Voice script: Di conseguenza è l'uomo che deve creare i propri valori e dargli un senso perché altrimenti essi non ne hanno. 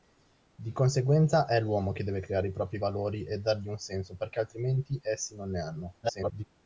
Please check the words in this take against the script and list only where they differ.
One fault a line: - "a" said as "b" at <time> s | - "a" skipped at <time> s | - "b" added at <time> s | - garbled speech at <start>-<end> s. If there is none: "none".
- garbled speech at 6.0-6.4 s